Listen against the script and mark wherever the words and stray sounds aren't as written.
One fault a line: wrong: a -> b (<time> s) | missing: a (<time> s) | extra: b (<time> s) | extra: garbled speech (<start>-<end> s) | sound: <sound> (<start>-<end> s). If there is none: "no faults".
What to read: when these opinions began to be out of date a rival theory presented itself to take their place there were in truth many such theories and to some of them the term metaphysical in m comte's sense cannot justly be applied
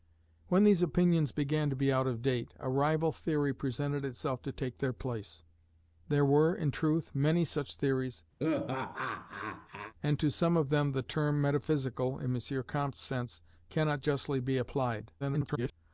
sound: laugh (8.4-9.9 s)
extra: garbled speech (15.2-15.7 s)